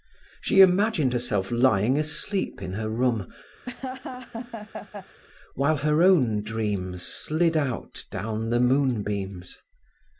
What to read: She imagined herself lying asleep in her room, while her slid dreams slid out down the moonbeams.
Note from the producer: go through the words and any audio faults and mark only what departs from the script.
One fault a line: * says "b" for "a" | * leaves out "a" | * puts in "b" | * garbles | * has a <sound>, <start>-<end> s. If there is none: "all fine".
* has a laugh, 3.6-5.2 s
* says "own" for "slid"